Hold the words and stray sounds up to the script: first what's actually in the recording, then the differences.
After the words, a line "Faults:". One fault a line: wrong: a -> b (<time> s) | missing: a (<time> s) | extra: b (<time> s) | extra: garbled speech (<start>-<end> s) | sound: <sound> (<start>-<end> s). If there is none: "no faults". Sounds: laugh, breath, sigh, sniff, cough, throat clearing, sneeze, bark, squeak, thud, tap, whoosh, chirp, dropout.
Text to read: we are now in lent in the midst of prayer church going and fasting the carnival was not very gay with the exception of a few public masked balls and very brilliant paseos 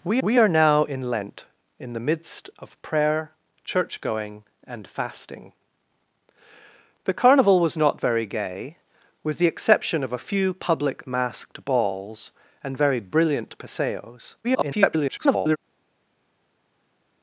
we we are now in lent in the midst of prayer church going and fasting the carnival was not very gay with the exception of a few public masked balls and very brilliant paseos [garbled]
Faults:
extra: we (0.2 s)
extra: garbled speech (14.4-15.6 s)